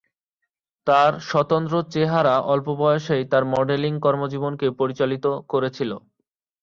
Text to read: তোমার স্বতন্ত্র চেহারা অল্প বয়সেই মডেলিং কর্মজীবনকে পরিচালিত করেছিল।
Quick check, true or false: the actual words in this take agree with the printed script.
false